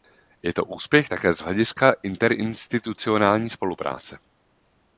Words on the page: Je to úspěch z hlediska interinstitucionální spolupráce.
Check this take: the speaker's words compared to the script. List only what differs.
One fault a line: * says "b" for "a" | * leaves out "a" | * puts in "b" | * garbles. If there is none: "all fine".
* puts in "také"